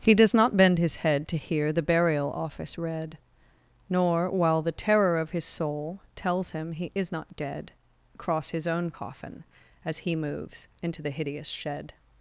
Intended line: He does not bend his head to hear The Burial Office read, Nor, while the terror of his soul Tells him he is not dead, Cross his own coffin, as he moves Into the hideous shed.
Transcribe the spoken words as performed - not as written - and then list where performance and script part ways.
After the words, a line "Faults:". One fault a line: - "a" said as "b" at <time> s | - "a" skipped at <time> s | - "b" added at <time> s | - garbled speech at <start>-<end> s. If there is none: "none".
He does not bend his head to hear The Burial Office read, Nor, while the terror of his soul Tells him he is not dead, Cross his own coffin, as he moves Into the hideous shed.
Faults:
none